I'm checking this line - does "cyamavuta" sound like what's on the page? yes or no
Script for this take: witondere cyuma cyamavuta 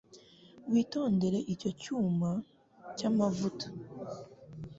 yes